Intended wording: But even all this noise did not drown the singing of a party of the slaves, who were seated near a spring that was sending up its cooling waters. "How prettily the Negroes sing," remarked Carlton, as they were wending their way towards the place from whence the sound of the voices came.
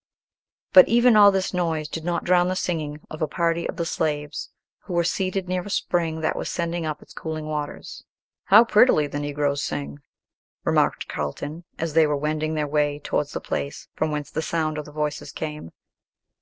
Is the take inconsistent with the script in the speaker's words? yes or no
no